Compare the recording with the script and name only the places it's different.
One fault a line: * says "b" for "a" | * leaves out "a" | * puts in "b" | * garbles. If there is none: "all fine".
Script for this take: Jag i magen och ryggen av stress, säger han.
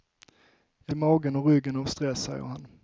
all fine